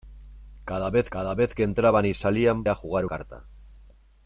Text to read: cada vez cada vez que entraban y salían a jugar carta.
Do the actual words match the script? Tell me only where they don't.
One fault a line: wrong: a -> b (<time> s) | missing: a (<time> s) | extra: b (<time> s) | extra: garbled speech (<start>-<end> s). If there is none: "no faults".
no faults